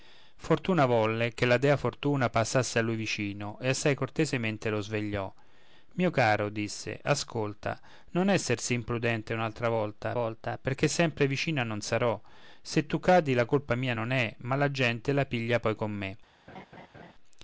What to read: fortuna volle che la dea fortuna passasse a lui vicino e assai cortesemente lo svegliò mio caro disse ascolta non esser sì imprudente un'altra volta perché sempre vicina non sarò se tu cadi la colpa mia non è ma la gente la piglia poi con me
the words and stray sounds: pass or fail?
fail